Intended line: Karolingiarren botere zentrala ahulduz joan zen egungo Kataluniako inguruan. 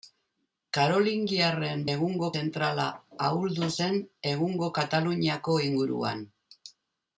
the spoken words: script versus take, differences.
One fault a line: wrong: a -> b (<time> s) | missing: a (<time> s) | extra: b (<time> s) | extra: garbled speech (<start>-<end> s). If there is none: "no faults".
wrong: botere -> egungo (1.9 s)
missing: joan (3.7 s)